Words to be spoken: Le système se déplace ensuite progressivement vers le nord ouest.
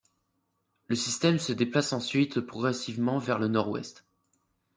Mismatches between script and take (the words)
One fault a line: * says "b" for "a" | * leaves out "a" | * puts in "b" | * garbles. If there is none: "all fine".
all fine